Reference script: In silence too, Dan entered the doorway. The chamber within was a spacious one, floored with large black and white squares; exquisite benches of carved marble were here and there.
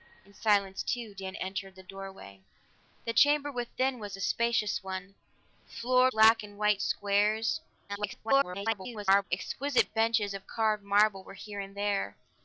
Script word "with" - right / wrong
wrong